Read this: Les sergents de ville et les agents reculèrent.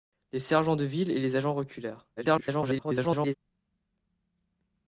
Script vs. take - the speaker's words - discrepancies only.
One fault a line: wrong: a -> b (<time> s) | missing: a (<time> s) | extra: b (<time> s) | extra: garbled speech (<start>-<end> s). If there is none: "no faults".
extra: garbled speech (2.2-3.3 s)